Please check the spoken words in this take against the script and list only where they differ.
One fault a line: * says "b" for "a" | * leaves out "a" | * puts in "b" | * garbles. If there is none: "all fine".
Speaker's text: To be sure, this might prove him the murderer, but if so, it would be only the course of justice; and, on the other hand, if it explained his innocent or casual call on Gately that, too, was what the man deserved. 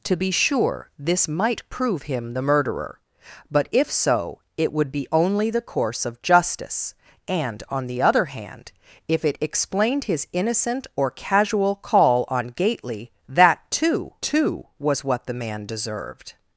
* puts in "too"